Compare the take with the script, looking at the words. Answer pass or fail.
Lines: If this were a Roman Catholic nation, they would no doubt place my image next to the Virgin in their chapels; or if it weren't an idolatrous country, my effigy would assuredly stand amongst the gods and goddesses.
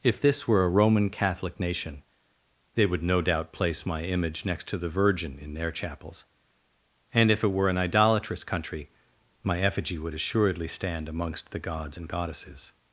fail